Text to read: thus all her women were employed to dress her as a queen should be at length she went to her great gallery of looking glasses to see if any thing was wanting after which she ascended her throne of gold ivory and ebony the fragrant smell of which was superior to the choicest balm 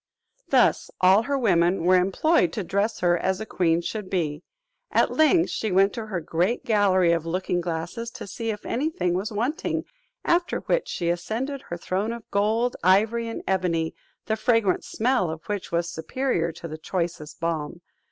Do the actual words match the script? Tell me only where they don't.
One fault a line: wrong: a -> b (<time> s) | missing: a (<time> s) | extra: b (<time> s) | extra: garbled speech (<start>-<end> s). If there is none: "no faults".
no faults